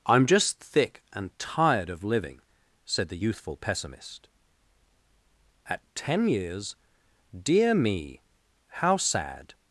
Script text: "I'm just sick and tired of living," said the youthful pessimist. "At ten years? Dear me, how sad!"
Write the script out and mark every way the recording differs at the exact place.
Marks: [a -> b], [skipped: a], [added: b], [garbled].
"I'm just [sick -> thick] and tired of living," said the youthful pessimist. "At ten years? Dear me, how sad!"